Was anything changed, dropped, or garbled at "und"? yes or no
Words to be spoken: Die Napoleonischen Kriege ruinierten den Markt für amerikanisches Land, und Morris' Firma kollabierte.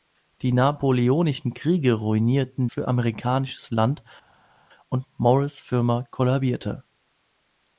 no